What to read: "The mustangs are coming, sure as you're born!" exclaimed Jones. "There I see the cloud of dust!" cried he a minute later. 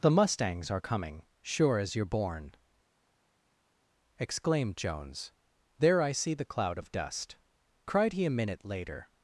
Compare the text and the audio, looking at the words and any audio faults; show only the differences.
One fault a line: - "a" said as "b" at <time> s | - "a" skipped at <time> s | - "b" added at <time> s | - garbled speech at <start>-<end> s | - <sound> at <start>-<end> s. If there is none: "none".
none